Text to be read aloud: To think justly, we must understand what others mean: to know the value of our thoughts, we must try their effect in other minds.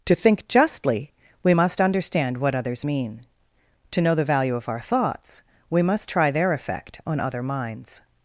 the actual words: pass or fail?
fail